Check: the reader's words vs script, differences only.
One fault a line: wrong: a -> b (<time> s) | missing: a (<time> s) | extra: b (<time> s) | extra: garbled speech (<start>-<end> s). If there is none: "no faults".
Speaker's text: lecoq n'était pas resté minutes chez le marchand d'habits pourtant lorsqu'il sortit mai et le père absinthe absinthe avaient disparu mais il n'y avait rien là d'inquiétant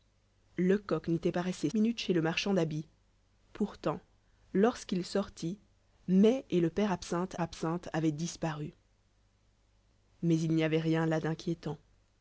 no faults